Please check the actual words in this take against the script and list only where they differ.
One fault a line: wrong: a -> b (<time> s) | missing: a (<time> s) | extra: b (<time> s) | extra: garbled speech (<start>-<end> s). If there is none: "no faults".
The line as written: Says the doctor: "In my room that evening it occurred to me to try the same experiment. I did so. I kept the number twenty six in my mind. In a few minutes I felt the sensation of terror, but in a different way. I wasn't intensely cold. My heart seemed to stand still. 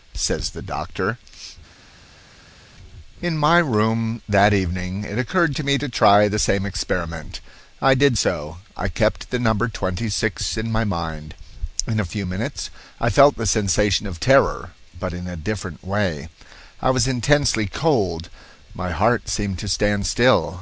wrong: wasn't -> was (16.9 s)